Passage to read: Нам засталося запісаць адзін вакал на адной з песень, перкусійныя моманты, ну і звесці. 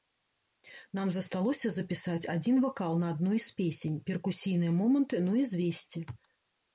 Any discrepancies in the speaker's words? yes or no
no